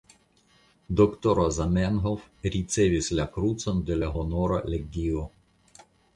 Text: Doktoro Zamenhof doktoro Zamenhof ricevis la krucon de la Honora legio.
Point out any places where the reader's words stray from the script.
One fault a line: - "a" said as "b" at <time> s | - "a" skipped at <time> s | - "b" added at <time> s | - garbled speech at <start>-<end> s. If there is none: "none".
- "doktoro Zamenhof" skipped at 2.2 s